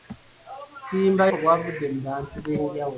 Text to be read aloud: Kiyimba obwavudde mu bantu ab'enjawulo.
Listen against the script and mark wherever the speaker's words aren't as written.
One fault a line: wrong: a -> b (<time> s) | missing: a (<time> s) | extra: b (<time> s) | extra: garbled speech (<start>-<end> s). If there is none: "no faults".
no faults